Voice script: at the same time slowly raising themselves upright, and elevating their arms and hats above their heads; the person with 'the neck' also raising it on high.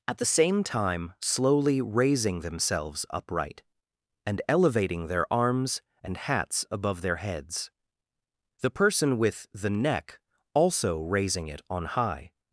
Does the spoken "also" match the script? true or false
true